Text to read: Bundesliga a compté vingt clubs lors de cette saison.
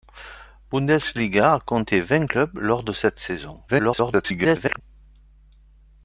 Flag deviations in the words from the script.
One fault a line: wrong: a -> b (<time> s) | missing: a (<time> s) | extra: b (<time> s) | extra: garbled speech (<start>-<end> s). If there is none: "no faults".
extra: garbled speech (3.7-4.8 s)